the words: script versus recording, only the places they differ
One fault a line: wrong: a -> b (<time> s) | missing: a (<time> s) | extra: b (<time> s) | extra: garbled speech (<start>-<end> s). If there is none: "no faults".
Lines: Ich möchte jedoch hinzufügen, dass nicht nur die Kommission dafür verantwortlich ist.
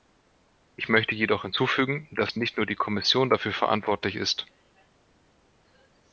no faults